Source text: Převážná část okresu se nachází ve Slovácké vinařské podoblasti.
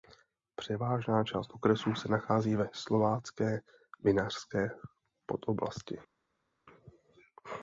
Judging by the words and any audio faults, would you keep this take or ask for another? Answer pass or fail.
pass